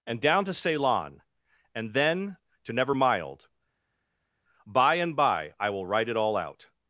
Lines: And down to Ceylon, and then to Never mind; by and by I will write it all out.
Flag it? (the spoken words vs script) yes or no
yes